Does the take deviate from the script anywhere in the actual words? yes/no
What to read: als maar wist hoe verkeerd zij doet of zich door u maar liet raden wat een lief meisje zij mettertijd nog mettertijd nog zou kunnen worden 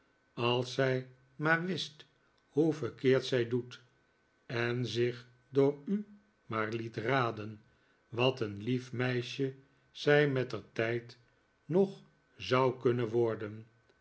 yes